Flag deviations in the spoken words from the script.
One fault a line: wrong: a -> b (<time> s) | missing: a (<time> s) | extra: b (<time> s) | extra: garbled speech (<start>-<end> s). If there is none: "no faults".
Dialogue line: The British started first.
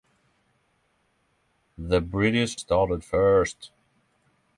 no faults